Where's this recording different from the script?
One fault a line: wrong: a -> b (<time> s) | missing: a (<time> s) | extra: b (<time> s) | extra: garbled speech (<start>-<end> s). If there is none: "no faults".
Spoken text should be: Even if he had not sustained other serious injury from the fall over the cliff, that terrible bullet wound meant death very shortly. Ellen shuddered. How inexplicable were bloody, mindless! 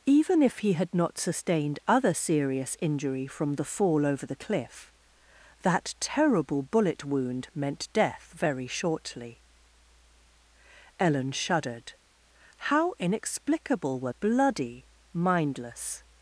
no faults